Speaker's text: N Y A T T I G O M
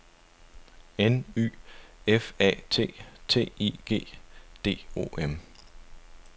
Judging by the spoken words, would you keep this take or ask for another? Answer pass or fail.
fail